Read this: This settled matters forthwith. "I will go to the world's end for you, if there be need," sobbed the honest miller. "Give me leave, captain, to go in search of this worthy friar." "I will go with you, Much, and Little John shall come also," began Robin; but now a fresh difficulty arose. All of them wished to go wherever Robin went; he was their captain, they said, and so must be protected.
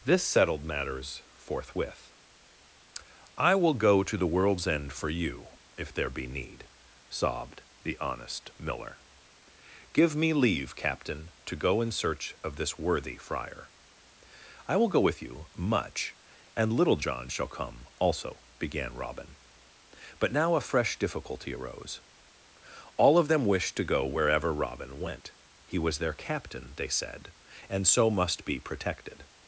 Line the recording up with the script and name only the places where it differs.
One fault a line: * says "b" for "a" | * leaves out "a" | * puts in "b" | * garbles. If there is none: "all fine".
all fine